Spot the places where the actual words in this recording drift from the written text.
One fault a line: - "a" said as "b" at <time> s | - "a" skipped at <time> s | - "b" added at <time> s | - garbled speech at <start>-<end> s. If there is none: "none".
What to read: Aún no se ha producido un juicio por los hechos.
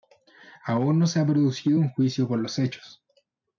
none